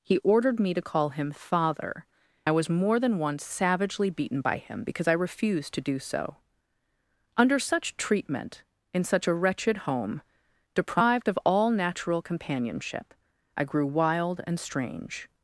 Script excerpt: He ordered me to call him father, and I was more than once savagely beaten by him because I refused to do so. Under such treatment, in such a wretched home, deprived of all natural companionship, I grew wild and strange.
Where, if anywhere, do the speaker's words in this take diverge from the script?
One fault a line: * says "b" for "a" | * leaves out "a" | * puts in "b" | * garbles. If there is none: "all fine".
* leaves out "and"